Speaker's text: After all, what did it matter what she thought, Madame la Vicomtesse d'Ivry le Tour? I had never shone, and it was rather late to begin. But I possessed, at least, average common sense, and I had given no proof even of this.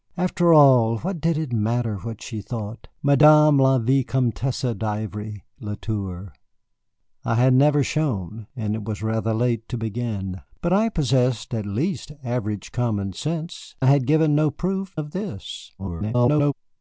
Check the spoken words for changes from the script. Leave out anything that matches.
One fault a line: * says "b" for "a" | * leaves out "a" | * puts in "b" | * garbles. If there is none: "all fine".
* leaves out "and"
* leaves out "even"
* garbles